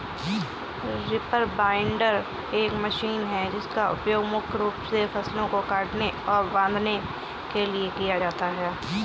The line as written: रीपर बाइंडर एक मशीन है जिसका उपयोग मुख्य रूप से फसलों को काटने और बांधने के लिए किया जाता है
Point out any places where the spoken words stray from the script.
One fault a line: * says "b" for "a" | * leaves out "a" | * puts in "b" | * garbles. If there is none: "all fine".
all fine